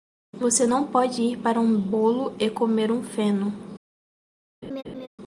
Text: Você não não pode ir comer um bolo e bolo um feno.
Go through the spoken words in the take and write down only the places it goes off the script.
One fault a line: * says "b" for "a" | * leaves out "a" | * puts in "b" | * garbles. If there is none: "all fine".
* leaves out "não"
* says "para" for "comer"
* says "comer" for "bolo"